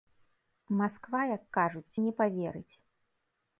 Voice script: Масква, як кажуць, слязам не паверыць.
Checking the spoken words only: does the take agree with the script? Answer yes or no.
no